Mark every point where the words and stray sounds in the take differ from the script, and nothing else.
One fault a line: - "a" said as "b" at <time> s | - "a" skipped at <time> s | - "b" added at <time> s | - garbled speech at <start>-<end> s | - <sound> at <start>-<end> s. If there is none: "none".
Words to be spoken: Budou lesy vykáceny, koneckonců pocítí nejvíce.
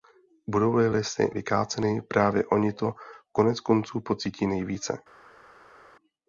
- "li" added at 0.8 s
- "právě oni to" added at 2.0 s